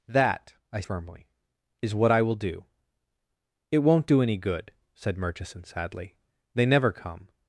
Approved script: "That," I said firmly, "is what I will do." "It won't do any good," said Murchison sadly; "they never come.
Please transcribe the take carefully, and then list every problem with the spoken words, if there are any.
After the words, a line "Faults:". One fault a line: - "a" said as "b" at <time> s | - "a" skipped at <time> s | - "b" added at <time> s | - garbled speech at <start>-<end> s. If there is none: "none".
"That," I firmly, "is what I will do." "It won't do any good," said Murchison sadly; "they never come.
Faults:
- "said" skipped at 0.8 s